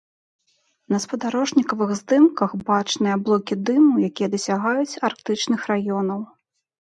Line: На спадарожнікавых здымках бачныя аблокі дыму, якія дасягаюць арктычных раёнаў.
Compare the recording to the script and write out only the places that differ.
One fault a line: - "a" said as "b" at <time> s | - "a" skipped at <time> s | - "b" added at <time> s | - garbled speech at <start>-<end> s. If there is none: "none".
none